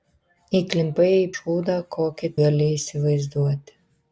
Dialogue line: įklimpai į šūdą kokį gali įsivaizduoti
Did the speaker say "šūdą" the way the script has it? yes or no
yes